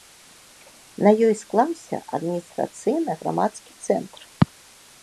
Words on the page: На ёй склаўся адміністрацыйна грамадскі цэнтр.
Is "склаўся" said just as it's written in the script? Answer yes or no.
yes